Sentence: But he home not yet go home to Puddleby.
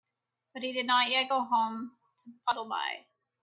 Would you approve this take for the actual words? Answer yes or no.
no